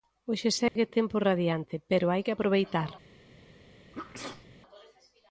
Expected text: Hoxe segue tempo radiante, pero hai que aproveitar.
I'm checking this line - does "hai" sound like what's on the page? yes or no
yes